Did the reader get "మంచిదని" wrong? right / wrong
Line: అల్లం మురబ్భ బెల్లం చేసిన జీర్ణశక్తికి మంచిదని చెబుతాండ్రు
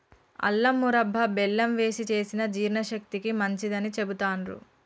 right